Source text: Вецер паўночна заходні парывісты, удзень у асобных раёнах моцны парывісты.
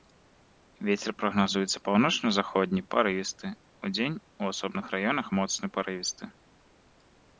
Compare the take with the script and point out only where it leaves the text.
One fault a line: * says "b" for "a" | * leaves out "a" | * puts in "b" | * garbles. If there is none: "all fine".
* puts in "прагназуецца"